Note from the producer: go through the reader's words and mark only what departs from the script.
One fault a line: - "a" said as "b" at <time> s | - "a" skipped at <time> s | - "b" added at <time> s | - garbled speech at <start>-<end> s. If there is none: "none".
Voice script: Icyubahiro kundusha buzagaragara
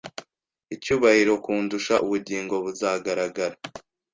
- "ubugingo" added at 2.0 s